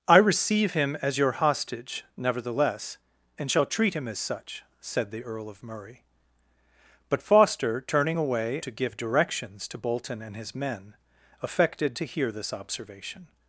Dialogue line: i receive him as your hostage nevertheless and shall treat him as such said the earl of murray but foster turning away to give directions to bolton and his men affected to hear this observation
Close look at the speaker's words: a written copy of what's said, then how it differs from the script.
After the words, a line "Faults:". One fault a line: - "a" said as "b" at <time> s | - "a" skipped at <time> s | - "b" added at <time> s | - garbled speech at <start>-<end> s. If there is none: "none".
i receive him as your hostage nevertheless and shall treat him as such said the earl of murray but foster turning away to give directions to bolton and his men affected to hear this observation
Faults:
none